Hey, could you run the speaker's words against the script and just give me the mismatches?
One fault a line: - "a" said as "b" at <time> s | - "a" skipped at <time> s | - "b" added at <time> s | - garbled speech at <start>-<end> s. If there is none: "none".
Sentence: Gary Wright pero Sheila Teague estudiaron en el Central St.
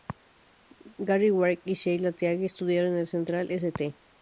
- "pero" said as "y" at 1.6 s